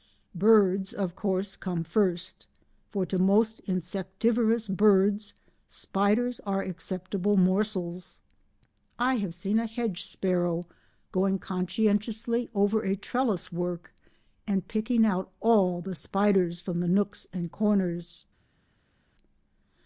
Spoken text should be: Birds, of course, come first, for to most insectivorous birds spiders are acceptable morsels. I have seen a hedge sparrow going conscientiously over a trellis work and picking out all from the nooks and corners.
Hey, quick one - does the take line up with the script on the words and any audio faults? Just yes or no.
no